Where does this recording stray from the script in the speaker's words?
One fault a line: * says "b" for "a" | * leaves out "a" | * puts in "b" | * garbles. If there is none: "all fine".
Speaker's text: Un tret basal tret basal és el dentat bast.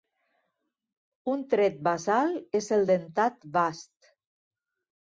* leaves out "tret basal"